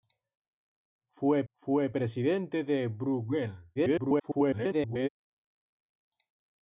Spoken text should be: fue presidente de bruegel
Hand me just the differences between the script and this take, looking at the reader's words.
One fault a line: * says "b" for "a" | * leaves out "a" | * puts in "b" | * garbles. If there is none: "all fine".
* puts in "fue"
* garbles